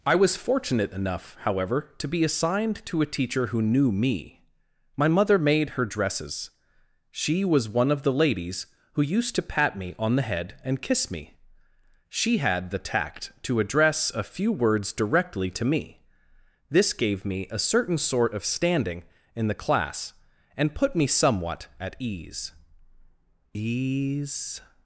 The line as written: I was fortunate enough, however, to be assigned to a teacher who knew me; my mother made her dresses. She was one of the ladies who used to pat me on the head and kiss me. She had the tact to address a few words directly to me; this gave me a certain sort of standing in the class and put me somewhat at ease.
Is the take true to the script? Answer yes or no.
no